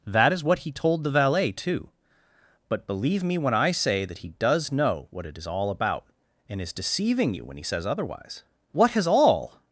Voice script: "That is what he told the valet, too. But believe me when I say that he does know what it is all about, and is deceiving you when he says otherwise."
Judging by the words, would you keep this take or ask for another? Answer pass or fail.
fail